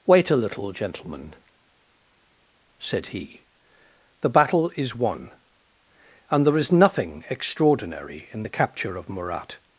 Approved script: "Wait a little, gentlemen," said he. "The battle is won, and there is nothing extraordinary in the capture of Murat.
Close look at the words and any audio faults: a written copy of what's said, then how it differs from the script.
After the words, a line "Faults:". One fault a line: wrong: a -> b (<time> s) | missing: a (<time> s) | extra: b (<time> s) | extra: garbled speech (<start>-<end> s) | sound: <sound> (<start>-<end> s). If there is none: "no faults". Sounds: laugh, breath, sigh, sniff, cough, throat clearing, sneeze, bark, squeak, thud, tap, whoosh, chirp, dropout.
"Wait a little, gentlemen," said he. "The battle is won, and there is nothing extraordinary in the capture of Murat.
Faults:
no faults